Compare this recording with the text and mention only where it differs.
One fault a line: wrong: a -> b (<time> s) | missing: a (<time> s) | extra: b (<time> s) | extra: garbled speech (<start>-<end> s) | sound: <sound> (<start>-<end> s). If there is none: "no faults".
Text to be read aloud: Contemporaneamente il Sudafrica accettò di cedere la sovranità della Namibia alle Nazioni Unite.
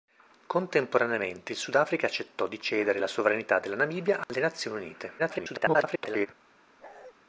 sound: dropout (4.2-4.3 s)
extra: garbled speech (5.2-6.3 s)
sound: bark (6.8-7.1 s)